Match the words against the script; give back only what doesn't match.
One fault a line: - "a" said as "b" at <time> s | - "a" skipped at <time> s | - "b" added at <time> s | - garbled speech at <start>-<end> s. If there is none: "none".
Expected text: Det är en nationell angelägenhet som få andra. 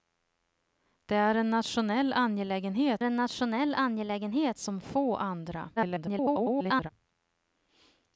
- "en nationell angelägenhet" added at 3.0 s
- garbled speech at 5.8-6.9 s